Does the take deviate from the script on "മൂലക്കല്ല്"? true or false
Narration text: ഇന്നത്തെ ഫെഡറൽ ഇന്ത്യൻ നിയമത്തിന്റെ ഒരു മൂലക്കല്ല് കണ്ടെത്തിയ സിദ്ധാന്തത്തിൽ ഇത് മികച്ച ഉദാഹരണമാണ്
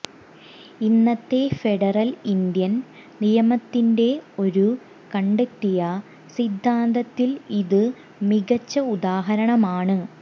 true